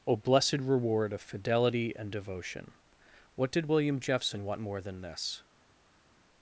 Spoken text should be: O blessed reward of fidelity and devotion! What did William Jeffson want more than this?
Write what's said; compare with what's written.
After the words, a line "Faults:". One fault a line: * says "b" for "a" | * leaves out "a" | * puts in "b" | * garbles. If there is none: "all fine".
O blessed reward of fidelity and devotion! What did William Jeffson want more than this?
Faults:
all fine